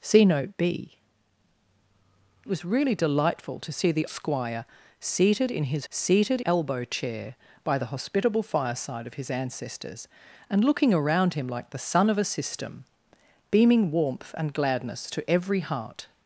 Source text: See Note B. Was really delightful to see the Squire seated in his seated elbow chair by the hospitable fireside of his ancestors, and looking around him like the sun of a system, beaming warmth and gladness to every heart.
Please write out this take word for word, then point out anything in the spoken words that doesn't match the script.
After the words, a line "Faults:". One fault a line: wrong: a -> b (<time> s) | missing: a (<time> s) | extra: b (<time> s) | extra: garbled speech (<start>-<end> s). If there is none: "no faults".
See Note B. Was really delightful to see the Squire seated in his seated elbow chair by the hospitable fireside of his ancestors, and looking around him like the sun of a system, beaming warmth and gladness to every heart.
Faults:
no faults